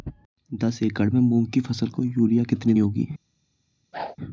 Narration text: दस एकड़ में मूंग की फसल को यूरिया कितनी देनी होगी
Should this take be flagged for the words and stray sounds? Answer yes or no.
yes